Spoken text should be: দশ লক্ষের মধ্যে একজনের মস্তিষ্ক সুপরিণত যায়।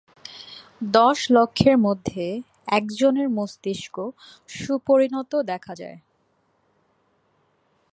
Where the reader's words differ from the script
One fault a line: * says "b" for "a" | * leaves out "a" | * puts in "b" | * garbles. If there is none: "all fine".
* puts in "দেখা"